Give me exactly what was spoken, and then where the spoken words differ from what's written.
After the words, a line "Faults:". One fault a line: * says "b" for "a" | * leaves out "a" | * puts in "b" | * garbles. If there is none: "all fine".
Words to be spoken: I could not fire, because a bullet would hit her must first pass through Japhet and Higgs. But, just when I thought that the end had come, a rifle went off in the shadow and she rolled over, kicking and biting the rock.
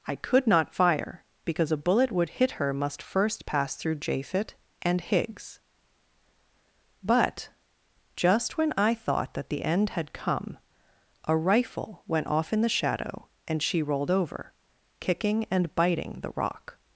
I could not fire, because a bullet would hit her must first pass through Japhet and Higgs. But, just when I thought that the end had come, a rifle went off in the shadow and she rolled over, kicking and biting the rock.
Faults:
all fine